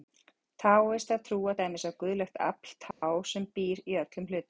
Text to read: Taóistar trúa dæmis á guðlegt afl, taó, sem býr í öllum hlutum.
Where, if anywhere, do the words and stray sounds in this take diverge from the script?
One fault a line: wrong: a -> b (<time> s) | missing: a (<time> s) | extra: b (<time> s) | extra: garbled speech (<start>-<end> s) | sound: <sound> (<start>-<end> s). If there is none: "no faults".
sound: dropout (2.9-3.0 s)